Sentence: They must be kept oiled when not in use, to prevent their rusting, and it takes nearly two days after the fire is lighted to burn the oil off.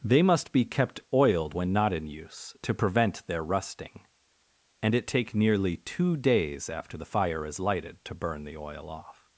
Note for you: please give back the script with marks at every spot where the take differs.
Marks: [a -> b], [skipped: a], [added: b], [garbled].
They must be kept oiled when not in use, to prevent their rusting, and it [takes -> take] nearly two days after the fire is lighted to burn the oil off.